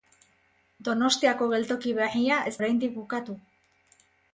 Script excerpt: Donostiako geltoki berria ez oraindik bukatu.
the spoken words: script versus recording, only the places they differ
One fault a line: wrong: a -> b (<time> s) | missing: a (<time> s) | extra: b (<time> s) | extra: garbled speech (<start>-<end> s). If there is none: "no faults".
no faults